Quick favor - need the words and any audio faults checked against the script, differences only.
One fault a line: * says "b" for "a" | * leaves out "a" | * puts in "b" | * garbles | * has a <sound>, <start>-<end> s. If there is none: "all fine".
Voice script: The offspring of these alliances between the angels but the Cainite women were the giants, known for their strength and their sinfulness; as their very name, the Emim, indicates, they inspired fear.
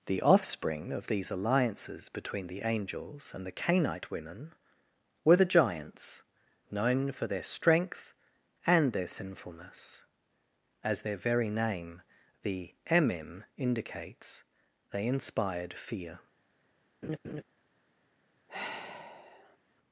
* says "and" for "but"
* has a laugh, 17.0-17.4 s
* has a sigh, 18.5-19.6 s